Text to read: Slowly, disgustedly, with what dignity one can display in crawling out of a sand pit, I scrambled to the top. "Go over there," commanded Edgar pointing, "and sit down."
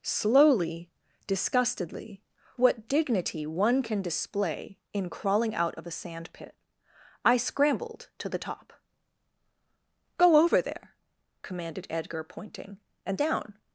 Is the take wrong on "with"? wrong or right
wrong